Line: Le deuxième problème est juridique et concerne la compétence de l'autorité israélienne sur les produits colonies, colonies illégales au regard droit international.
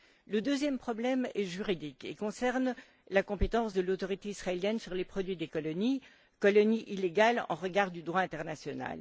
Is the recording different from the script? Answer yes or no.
yes